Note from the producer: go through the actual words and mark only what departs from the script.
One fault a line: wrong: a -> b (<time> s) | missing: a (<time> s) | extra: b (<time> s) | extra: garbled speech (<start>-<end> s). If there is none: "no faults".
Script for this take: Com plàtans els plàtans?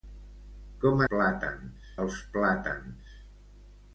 no faults